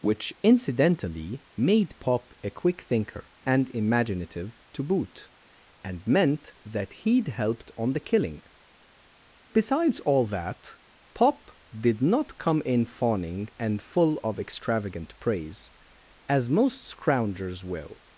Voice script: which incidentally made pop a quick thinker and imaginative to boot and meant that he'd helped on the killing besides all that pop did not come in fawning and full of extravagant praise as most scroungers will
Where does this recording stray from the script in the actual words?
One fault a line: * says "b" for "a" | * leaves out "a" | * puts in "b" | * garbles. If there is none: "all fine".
all fine